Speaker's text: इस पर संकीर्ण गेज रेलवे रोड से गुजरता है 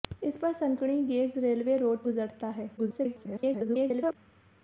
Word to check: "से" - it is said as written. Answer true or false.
false